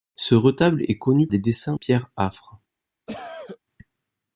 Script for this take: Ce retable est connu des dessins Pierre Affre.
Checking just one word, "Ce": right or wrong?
right